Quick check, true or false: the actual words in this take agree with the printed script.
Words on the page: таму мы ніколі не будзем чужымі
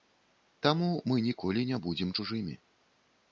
true